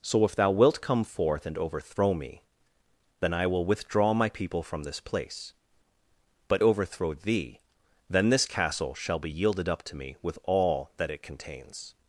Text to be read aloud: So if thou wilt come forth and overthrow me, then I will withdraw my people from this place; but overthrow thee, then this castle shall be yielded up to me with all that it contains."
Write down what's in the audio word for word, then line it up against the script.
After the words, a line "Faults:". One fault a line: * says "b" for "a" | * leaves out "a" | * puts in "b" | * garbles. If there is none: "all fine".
So if thou wilt come forth and overthrow me, then I will withdraw my people from this place; but overthrow thee, then this castle shall be yielded up to me with all that it contains."
Faults:
all fine